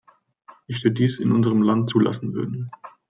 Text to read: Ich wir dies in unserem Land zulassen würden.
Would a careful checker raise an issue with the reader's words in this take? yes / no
no